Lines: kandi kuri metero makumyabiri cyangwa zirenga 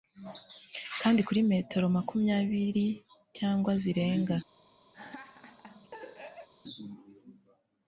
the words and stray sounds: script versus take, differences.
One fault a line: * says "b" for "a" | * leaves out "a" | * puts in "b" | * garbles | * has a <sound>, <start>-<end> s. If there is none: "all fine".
* has a laugh, 4.9-6.5 s